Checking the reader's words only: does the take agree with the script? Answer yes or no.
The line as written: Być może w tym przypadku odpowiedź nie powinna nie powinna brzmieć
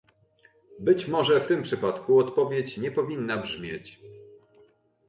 no